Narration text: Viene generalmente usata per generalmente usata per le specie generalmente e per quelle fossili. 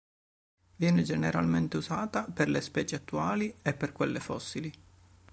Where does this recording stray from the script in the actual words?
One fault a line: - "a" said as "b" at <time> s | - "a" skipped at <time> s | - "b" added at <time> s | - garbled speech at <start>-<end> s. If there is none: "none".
- "generalmente usata per" skipped at 2.5 s
- "generalmente" said as "attuali" at 2.9 s